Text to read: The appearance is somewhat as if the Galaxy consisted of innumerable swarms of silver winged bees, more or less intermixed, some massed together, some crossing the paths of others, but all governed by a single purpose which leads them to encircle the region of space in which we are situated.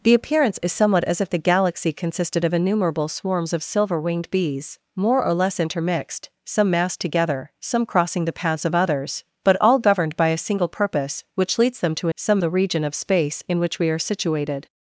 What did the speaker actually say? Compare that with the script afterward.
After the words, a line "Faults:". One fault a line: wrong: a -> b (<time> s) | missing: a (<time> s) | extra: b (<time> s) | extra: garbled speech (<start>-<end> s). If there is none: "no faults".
The appearance is somewhat as if the Galaxy consisted of innumerable swarms of silver winged bees, more or less intermixed, some massed together, some crossing the paths of others, but all governed by a single purpose which leads them to some the region of space in which we are situated.
Faults:
wrong: encircle -> some (12.1 s)